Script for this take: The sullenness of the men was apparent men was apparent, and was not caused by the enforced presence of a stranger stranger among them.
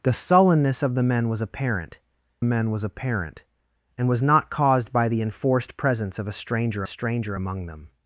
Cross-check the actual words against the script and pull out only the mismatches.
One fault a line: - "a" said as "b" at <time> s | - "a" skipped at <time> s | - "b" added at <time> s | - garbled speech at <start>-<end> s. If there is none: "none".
none